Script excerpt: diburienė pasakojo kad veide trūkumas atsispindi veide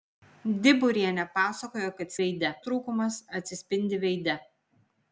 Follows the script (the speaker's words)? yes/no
yes